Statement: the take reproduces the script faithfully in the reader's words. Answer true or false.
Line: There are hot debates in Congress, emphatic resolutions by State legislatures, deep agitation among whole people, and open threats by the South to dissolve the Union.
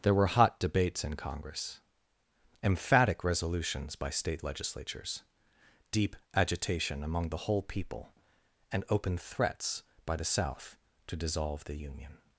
false